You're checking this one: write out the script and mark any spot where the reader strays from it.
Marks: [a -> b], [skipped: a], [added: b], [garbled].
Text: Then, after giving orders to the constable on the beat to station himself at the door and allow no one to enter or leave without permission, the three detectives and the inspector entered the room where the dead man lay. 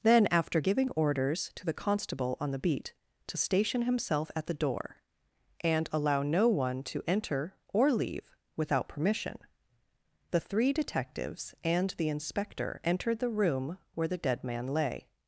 Then, after giving orders to the constable on the beat to station himself at the door and allow no one to enter or leave without permission, the three detectives and the inspector entered the room where the dead man lay.